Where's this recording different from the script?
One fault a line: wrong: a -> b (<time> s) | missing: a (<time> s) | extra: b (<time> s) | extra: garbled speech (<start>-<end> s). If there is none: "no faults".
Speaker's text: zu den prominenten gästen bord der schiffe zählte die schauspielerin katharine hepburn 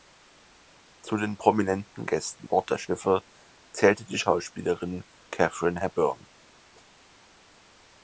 no faults